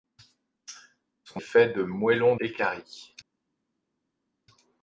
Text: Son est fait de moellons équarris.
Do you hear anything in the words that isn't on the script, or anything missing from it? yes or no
no